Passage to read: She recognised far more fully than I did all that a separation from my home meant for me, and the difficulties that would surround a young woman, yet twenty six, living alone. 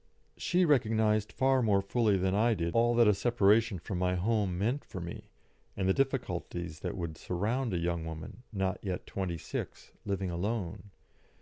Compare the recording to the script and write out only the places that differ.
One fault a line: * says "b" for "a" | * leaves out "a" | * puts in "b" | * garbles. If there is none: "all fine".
* puts in "not"